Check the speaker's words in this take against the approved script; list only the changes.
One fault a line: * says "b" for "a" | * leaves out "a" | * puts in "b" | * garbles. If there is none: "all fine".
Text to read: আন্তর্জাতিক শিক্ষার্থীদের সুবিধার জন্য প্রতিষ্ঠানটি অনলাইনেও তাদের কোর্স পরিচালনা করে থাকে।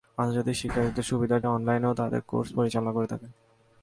* leaves out "জন্য প্রতিষ্ঠানটি"